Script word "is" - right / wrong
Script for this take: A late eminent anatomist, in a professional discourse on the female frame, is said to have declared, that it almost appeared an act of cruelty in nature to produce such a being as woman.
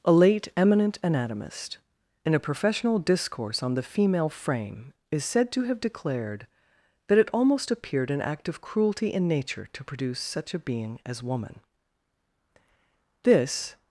right